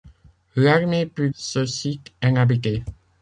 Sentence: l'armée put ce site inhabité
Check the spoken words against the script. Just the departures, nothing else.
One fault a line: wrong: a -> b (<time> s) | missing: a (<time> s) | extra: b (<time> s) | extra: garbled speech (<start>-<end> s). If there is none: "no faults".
no faults